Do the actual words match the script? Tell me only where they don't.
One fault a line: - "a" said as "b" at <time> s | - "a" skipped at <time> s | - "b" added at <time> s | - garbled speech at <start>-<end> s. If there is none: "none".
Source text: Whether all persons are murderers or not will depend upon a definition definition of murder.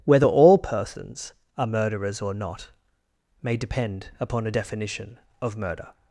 - "will" said as "may" at 3.4 s
- "definition" skipped at 5.2 s